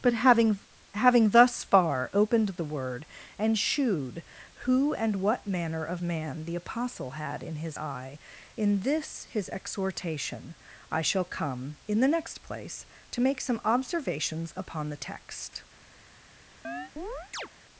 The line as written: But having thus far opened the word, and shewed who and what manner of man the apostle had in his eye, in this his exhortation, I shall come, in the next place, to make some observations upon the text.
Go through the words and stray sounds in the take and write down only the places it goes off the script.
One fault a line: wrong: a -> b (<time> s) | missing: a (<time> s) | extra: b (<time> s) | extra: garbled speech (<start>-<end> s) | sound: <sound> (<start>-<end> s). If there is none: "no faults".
extra: having (0.9 s)
sound: chirp (16.6-17.5 s)